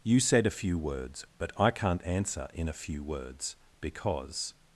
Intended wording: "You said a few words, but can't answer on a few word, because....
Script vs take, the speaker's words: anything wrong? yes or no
yes